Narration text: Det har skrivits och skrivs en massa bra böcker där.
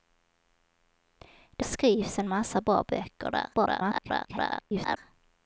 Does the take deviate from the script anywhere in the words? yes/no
yes